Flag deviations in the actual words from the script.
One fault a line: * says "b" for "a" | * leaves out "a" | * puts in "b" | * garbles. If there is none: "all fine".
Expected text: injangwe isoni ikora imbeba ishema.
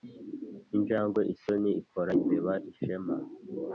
all fine